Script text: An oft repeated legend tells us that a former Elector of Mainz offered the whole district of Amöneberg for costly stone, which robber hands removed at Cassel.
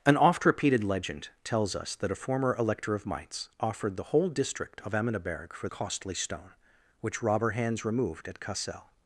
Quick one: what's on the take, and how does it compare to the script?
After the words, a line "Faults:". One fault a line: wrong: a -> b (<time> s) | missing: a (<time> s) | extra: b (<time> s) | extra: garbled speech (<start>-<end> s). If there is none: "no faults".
An oft repeated legend tells us that a former Elector of Mainz offered the whole district of Amöneberg for costly stone, which robber hands removed at Cassel.
Faults:
no faults